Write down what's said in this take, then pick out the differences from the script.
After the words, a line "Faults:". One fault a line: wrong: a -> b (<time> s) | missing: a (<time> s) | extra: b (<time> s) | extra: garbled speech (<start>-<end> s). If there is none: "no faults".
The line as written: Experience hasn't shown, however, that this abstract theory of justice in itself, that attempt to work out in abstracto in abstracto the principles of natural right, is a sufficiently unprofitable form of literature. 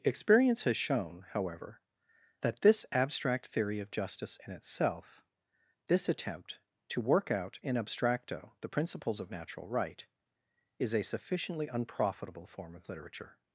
Experience has shown, however, that this abstract theory of justice in itself, this attempt to work out in abstracto the principles of natural right, is a sufficiently unprofitable form of literature.
Faults:
wrong: hasn't -> has (0.6 s)
wrong: that -> this (5.9 s)
missing: in abstracto (8.5 s)